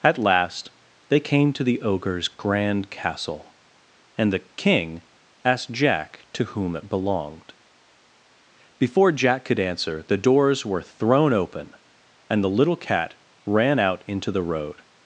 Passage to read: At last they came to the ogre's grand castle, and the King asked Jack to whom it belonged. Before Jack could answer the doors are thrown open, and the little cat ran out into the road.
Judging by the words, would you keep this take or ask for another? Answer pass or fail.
fail